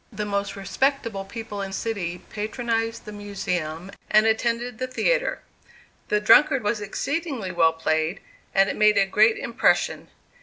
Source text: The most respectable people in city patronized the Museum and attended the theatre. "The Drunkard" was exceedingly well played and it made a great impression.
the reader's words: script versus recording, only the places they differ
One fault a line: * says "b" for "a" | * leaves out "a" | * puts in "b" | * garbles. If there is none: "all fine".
all fine